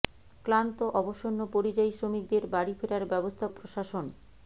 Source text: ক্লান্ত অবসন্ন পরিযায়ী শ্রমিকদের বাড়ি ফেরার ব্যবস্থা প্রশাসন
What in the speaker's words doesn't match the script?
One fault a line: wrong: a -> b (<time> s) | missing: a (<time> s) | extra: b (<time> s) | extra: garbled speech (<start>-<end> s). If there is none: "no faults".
no faults